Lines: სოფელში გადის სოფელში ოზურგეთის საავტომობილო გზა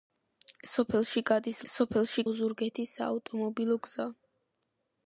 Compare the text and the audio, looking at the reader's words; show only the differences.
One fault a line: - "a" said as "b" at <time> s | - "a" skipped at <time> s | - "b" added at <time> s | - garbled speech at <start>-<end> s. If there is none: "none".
none